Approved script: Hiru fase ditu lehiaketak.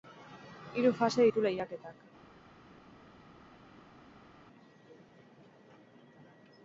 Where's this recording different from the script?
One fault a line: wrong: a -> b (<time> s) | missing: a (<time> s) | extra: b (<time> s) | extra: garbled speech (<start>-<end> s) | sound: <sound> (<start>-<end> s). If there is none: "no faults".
no faults